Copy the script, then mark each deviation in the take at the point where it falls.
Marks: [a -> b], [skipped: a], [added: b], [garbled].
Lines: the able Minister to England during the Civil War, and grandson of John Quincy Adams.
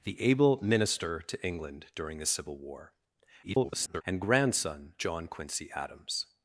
the able Minister to England during the Civil War, [garbled] and grandson [skipped: of] John Quincy Adams.